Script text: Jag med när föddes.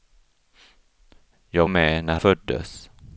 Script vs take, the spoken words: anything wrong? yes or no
no